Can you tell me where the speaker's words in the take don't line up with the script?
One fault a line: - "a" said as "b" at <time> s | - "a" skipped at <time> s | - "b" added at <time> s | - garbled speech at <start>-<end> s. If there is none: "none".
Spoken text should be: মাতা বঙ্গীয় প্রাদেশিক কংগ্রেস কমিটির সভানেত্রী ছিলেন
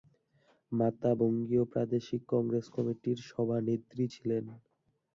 none